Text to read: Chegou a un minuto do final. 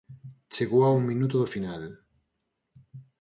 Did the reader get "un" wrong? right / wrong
right